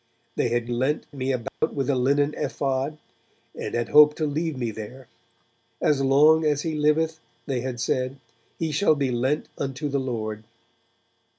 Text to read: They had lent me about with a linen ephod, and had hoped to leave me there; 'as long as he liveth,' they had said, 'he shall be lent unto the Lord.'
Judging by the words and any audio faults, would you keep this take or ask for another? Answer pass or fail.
fail